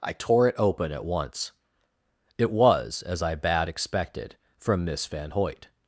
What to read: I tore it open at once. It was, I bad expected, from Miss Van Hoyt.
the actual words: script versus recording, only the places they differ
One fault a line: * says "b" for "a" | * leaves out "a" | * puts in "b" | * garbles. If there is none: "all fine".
* puts in "as"